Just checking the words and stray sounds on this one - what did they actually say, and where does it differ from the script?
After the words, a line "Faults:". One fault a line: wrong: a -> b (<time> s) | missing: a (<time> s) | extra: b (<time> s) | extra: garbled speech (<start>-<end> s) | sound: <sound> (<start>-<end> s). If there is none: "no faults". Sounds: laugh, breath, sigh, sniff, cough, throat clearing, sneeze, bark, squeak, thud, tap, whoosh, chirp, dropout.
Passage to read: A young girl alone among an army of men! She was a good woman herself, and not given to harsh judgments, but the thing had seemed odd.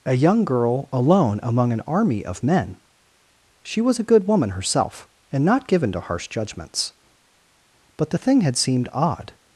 A young girl alone among an army of men! She was a good woman herself, and not given to harsh judgments, but the thing had seemed odd.
Faults:
no faults